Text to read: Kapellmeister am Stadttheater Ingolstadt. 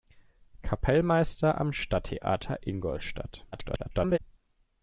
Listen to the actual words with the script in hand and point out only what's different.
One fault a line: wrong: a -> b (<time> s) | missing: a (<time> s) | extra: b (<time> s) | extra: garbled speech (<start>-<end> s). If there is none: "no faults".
extra: garbled speech (3.5-4.2 s)